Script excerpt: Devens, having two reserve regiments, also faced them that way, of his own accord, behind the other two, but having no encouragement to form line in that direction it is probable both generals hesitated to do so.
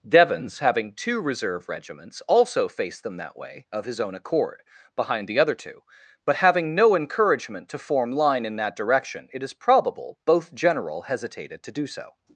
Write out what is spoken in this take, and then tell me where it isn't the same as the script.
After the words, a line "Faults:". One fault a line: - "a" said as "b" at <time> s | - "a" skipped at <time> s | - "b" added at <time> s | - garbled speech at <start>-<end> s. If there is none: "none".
Devens, having two reserve regiments, also faced them that way, of his own accord, behind the other two, but having no encouragement to form line in that direction it is probable both general hesitated to do so.
Faults:
- "generals" said as "general" at 10.5 s